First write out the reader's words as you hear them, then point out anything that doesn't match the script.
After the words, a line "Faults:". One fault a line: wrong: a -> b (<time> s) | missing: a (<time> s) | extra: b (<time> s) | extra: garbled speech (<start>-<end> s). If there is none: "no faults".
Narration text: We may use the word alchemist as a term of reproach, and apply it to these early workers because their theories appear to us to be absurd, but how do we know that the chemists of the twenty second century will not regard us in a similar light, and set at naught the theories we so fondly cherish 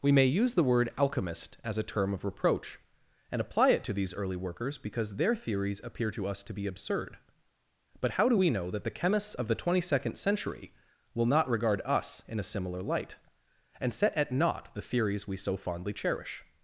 We may use the word alchemist as a term of reproach, and apply it to these early workers because their theories appear to us to be absurd, but how do we know that the chemists of the twenty second century will not regard us in a similar light, and set at naught the theories we so fondly cherish
Faults:
no faults